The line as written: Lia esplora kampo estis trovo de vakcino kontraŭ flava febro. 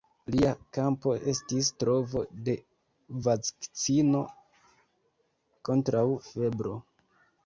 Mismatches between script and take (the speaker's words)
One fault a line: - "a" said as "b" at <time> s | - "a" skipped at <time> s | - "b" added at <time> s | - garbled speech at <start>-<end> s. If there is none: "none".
- "esplora" skipped at 0.5 s
- "flava" skipped at 6.1 s